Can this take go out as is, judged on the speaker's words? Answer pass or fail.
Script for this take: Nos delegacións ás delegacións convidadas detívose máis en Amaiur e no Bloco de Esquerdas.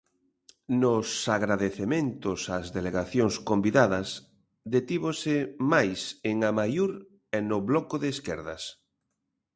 fail